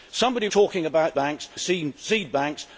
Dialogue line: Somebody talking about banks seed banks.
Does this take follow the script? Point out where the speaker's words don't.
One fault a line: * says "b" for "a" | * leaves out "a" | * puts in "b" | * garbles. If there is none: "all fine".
all fine